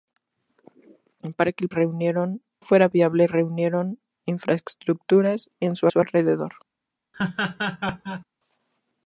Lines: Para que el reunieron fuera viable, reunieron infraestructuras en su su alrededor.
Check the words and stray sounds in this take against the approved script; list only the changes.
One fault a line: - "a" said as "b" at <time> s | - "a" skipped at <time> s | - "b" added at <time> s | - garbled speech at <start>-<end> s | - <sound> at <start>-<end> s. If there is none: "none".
- laugh at 7.1-8.2 s